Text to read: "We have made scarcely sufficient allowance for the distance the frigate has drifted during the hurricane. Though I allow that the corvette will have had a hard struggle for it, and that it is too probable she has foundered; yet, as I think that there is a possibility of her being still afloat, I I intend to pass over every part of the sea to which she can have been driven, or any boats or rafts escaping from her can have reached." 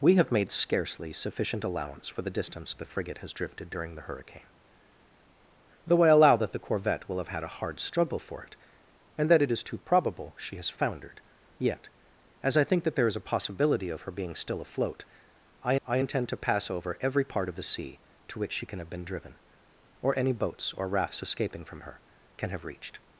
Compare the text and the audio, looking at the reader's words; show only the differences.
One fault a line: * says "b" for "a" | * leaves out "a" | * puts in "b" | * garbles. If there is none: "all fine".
all fine